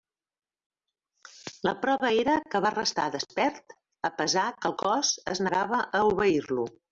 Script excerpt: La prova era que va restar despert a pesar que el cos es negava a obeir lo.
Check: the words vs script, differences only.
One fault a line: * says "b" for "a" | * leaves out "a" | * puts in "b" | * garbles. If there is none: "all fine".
all fine